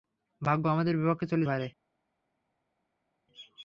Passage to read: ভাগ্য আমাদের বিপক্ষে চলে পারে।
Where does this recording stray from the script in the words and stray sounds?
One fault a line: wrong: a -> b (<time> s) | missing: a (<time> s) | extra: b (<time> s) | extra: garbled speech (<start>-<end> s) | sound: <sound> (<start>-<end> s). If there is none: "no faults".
no faults